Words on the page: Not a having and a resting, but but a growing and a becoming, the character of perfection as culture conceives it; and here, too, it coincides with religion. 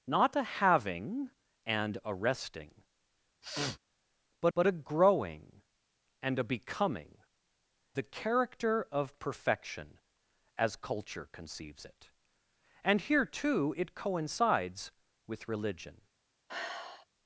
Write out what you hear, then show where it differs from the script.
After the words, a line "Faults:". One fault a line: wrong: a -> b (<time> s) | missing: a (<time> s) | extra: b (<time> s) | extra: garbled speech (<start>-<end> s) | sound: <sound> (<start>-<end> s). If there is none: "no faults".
Not a having and a resting, but but a growing and a becoming, the character of perfection as culture conceives it; and here, too, it coincides with religion.
Faults:
sound: sniff (3.4-3.8 s)
sound: sigh (16.5-17.1 s)